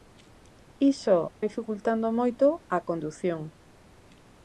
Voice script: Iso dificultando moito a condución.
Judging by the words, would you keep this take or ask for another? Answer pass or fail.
pass